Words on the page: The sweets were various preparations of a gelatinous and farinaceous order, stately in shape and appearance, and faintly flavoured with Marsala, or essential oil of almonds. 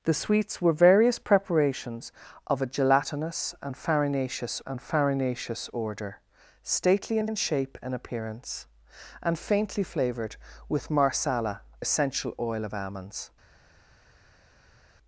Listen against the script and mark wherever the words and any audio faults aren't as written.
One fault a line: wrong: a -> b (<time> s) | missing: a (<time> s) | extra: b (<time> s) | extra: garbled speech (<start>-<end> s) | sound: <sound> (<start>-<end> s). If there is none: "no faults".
extra: and farinaceous (4.7 s)
extra: in (7.2 s)
missing: or (11.6 s)